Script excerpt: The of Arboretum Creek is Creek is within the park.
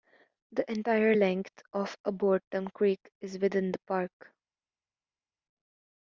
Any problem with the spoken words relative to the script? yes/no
yes